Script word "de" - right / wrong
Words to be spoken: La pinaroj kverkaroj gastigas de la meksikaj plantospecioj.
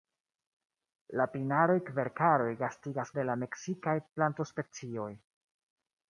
right